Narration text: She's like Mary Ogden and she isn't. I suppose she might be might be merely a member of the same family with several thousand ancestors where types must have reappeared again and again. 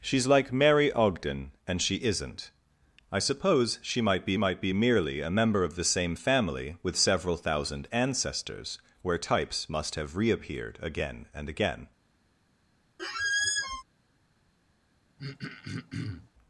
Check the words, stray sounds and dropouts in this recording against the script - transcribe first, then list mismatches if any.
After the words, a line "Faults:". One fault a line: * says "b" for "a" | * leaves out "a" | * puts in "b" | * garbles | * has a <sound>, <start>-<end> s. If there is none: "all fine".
She's like Mary Ogden and she isn't. I suppose she might be might be merely a member of the same family with several thousand ancestors where types must have reappeared again and again.
Faults:
* has a squeak, 13.0-13.8 s
* has a throat clearing, 15.2-16.3 s